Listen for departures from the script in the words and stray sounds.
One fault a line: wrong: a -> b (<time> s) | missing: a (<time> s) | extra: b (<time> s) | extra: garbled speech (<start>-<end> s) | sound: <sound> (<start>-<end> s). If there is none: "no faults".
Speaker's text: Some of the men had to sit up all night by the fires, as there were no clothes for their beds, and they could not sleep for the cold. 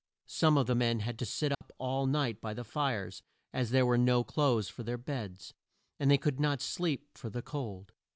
sound: dropout (1.5-1.6 s)